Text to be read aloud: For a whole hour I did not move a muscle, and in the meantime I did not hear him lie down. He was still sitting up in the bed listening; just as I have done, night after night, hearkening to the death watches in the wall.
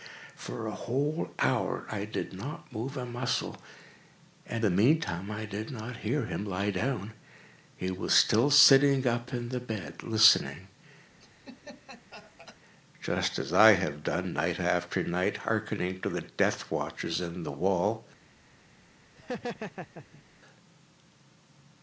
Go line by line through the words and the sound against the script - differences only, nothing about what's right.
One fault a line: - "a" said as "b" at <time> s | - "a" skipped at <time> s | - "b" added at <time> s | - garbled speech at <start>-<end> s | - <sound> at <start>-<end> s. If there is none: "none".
- "in" skipped at 4.7 s
- laugh at 11.2-12.6 s
- laugh at 19.2-20.2 s